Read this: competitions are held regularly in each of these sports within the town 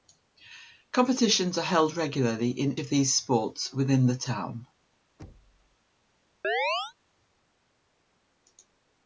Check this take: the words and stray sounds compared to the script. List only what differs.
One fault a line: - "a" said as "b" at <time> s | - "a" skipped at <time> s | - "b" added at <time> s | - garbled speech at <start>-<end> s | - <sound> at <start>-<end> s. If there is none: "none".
- "each" skipped at 2.8 s
- thud at 5.2-5.8 s
- chirp at 6.4-6.9 s